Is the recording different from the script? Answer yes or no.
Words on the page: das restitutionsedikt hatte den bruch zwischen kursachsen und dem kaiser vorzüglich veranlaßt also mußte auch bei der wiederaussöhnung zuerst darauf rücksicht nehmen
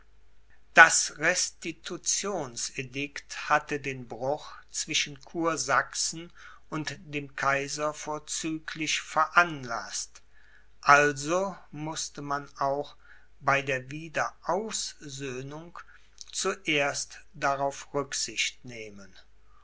yes